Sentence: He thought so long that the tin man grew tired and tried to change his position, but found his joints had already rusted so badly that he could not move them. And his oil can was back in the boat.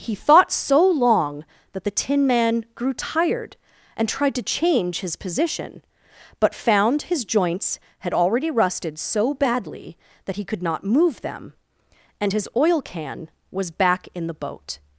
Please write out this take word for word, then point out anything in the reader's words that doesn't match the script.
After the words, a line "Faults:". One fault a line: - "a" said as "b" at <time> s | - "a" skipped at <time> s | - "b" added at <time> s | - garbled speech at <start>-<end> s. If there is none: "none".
He thought so long that the tin man grew tired and tried to change his position, but found his joints had already rusted so badly that he could not move them. And his oil can was back in the boat.
Faults:
none